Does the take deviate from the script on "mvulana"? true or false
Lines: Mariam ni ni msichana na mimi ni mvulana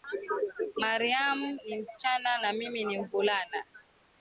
false